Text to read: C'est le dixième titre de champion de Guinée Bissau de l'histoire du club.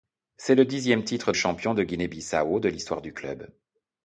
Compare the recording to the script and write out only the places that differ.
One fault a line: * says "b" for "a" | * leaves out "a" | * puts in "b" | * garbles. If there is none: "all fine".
* leaves out "de"